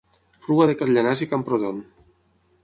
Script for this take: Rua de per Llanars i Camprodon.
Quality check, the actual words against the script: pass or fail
pass